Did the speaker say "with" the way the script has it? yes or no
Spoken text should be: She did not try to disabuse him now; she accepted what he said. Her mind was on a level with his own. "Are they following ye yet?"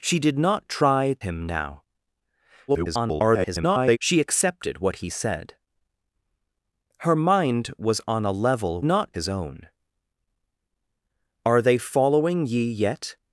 no